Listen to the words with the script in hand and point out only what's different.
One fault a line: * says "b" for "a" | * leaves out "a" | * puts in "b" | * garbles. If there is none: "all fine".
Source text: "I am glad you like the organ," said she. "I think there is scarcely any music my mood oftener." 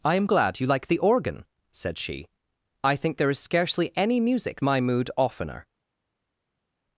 all fine